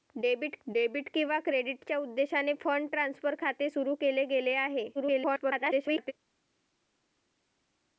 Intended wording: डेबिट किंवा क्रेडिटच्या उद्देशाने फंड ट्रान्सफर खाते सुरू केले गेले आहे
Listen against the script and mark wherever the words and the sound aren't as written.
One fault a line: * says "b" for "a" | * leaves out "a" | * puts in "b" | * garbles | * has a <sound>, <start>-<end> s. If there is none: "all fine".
* puts in "डेबिट"
* garbles